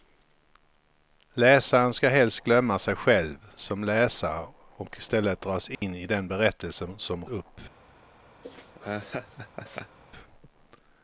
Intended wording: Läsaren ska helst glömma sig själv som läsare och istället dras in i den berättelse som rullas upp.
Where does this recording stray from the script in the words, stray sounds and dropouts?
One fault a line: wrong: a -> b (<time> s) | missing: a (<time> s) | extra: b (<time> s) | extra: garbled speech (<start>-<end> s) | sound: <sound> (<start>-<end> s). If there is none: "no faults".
sound: dropout (5.7-5.8 s)
missing: rullas (7.2 s)
sound: laugh (8.4-10.0 s)